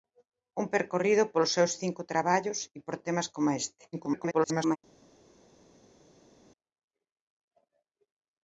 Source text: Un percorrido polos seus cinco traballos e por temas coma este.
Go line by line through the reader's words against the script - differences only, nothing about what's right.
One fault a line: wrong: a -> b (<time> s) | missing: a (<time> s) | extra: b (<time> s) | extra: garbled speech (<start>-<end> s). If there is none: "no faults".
extra: garbled speech (3.9-4.8 s)